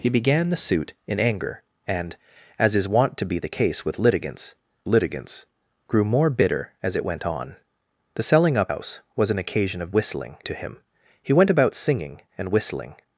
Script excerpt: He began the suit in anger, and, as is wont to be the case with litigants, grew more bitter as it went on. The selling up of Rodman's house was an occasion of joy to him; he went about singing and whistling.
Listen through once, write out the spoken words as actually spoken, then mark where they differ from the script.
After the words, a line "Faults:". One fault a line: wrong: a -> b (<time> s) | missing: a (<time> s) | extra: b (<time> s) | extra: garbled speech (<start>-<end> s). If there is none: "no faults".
He began the suit in anger, and, as is wont to be the case with litigants litigants, grew more bitter as it went on. The selling up house was an occasion of whistling to him; he went about singing and whistling.
Faults:
extra: litigants (4.9 s)
missing: of Rodman's (8.7 s)
wrong: joy -> whistling (9.9 s)